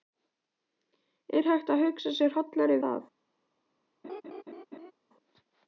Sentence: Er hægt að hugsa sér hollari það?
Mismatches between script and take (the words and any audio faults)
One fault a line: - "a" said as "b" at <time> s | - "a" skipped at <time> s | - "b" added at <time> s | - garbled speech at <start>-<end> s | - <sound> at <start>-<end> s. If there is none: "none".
- laugh at 4.0-4.9 s